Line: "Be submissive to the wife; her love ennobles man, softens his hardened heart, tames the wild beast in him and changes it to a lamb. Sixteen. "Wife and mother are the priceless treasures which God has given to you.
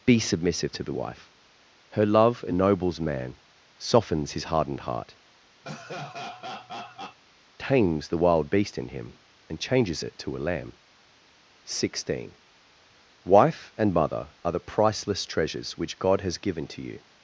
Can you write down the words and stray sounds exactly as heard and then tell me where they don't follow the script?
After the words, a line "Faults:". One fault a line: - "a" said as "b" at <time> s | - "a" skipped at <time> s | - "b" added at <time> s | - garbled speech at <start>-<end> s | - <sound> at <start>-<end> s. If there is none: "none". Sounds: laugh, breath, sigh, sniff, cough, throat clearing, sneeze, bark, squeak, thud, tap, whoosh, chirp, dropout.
"Be submissive to the wife; her love ennobles man, softens his hardened heart, tames the wild beast in him and changes it to a lamb. Sixteen. "Wife and mother are the priceless treasures which God has given to you.
Faults:
- laugh at 5.6-7.2 s